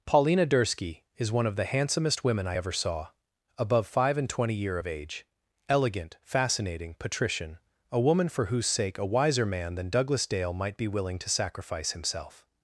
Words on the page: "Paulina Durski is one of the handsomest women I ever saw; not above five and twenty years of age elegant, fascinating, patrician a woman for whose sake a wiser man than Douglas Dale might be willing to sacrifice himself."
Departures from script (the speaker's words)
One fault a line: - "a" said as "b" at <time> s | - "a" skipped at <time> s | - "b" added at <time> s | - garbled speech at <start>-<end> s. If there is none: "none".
- "not" skipped at 3.1 s
- "years" said as "year" at 4.5 s